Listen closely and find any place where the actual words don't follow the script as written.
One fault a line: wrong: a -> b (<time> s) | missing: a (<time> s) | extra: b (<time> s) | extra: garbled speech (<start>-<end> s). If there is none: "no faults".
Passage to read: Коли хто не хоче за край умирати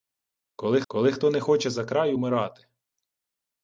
extra: коли (0.9 s)